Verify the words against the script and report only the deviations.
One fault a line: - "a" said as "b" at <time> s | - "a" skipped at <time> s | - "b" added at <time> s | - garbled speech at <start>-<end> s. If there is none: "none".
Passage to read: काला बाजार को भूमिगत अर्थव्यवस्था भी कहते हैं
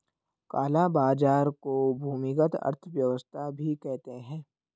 none